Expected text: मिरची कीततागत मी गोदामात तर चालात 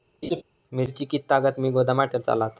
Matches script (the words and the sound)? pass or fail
fail